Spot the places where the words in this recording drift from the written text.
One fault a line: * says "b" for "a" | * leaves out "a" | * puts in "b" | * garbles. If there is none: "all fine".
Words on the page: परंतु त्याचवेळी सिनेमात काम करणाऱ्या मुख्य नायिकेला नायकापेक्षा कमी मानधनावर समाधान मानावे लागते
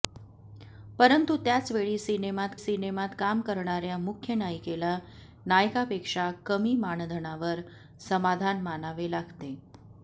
* puts in "सिनेमात"